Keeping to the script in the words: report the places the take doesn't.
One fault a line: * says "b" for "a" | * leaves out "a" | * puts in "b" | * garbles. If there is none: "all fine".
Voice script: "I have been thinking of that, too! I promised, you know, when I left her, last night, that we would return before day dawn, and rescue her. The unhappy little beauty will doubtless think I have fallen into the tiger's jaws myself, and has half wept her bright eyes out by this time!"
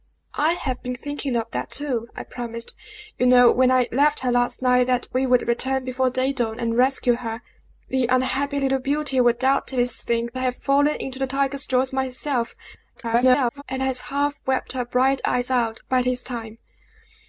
* garbles